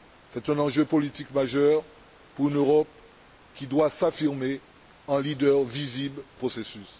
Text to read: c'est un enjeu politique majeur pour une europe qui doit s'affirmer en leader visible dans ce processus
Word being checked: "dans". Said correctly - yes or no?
no